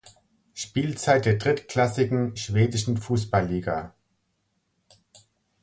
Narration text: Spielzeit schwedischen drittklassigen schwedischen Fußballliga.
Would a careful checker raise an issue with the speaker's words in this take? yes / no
yes